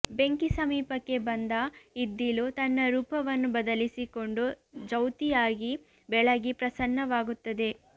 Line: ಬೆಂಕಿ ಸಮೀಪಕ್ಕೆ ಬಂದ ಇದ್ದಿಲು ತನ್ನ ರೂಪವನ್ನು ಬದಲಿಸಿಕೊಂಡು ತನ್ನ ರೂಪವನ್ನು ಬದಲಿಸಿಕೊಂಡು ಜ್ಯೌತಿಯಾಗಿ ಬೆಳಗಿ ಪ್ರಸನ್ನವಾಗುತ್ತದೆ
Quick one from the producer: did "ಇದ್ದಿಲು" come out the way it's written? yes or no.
yes